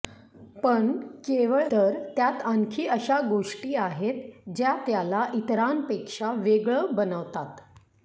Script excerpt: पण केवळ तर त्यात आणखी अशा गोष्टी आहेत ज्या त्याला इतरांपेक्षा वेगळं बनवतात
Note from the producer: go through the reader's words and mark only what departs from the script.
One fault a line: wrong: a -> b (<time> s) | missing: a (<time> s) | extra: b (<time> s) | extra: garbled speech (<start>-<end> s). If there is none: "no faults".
no faults